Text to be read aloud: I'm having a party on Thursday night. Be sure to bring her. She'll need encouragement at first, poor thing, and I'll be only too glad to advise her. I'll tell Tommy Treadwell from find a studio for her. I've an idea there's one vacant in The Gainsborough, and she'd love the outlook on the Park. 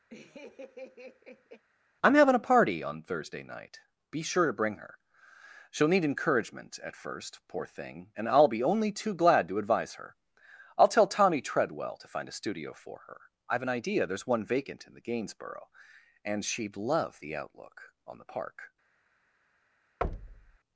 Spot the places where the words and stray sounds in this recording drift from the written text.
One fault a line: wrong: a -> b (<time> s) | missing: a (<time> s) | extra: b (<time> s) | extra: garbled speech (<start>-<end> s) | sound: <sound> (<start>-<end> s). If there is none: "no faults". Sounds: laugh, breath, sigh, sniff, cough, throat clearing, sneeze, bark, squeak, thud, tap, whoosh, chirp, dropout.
sound: laugh (0.1-1.6 s)
wrong: from -> to (12.0 s)
sound: thud (20.0-20.6 s)